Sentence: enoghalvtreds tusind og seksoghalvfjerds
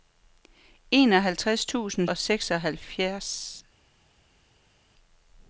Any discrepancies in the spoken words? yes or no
no